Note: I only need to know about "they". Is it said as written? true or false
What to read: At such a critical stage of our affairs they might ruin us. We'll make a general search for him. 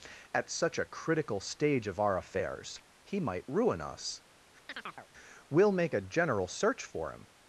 false